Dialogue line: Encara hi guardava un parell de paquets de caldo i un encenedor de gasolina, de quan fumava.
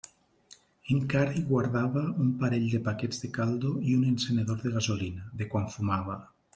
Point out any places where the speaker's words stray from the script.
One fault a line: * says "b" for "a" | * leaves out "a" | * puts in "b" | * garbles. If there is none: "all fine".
all fine